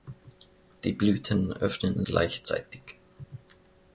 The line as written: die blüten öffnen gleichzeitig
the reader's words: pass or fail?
pass